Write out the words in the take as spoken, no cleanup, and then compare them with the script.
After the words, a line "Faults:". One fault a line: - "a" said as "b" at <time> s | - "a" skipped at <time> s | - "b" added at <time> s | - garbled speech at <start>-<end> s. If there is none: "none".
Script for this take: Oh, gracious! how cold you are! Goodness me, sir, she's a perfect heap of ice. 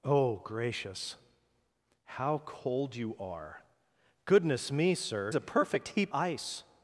Oh, gracious! how cold you are! Goodness me, sir, a perfect heap ice.
Faults:
- "she's" skipped at 5.3 s
- "of" skipped at 6.1 s